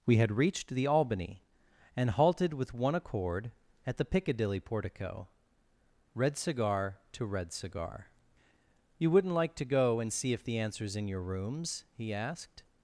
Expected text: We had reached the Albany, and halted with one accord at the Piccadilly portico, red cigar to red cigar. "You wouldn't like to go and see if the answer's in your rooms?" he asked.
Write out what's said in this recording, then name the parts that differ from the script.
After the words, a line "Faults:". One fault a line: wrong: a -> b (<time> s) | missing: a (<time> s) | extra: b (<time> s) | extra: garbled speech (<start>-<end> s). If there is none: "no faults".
We had reached the Albany, and halted with one accord at the Piccadilly portico, red cigar to red cigar. "You wouldn't like to go and see if the answer's in your rooms?" he asked.
Faults:
no faults